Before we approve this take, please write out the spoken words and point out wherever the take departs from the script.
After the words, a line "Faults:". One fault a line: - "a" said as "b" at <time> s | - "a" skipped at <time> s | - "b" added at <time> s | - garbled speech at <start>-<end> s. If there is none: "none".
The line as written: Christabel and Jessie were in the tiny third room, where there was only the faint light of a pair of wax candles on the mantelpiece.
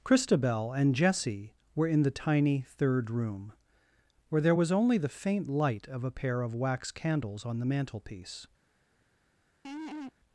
Christabel and Jessie were in the tiny third room, where there was only the faint light of a pair of wax candles on the mantelpiece.
Faults:
none